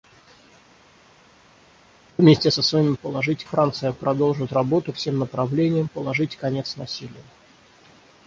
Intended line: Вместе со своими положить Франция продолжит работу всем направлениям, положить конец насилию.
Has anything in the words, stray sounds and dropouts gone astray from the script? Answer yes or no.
no